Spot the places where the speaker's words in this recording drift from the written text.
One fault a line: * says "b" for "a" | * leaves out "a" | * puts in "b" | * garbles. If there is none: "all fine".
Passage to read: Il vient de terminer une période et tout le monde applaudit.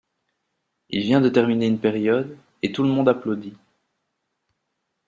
all fine